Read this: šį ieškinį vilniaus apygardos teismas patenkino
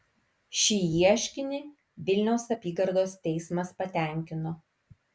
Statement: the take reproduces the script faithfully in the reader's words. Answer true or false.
true